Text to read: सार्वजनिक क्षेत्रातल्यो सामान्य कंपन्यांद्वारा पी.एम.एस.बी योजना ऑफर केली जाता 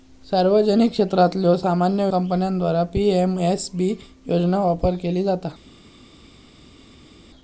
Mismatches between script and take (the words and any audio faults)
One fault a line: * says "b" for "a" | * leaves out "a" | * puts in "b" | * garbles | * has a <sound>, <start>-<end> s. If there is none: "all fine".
all fine